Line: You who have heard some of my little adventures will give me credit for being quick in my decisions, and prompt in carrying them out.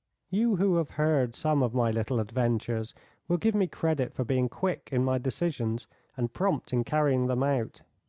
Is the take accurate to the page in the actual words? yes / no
yes